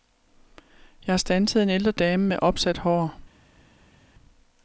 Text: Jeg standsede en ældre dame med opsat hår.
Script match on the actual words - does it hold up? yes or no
yes